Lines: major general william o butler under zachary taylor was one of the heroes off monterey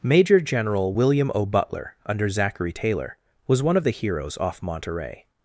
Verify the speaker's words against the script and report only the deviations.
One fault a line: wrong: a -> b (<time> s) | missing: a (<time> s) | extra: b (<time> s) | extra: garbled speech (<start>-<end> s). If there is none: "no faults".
no faults